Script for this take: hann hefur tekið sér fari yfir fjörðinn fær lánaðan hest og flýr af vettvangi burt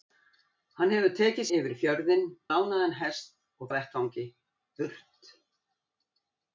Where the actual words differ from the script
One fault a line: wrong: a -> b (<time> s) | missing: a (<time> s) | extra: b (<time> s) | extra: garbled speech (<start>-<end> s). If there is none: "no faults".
missing: sér fari (1.4 s)
missing: fær (2.3 s)
missing: flýr (3.7 s)